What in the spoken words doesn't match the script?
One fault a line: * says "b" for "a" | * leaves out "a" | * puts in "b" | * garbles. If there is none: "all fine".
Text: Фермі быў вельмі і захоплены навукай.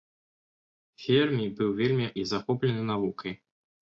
all fine